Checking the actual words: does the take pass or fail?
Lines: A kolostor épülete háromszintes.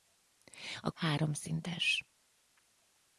fail